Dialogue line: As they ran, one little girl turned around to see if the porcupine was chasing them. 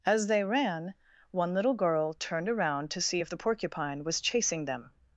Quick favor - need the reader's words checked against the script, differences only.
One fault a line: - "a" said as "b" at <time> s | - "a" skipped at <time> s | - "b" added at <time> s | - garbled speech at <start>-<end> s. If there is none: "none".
none